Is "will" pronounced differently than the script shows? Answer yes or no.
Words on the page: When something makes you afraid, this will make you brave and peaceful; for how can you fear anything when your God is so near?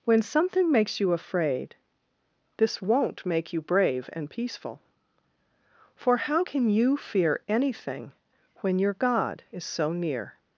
yes